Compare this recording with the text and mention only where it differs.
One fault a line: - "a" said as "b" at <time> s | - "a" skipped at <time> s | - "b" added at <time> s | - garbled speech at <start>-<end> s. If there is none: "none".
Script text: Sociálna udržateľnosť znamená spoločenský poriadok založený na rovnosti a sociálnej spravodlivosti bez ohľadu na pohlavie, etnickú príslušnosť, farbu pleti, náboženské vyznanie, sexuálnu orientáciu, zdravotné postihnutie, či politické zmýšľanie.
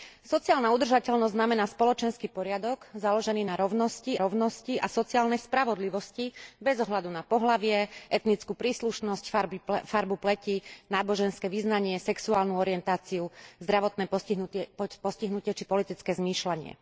- "rovnosti" added at 4.2 s